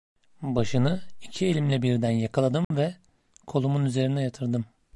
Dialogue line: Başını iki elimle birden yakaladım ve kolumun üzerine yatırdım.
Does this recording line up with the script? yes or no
yes